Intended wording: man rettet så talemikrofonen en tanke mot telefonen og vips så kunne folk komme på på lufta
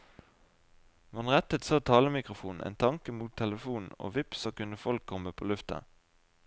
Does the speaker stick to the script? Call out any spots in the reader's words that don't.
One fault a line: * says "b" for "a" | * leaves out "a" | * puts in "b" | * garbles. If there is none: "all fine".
* leaves out "på"